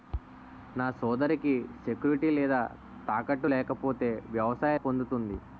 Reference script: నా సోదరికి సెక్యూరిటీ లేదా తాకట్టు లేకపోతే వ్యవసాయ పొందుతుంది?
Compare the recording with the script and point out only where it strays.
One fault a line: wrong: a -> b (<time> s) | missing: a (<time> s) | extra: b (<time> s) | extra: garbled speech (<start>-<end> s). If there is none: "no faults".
no faults